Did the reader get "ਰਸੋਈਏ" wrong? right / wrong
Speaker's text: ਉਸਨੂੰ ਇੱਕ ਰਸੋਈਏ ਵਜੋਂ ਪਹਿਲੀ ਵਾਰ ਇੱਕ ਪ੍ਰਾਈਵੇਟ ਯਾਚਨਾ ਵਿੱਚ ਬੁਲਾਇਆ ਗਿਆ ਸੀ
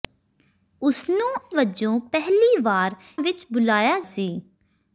wrong